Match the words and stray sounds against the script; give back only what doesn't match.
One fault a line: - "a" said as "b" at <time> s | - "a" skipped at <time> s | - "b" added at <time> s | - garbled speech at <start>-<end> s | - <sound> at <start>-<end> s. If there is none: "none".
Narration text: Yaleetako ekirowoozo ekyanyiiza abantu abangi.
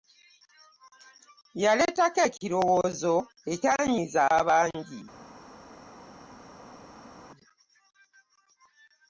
- "abantu" skipped at 4.2 s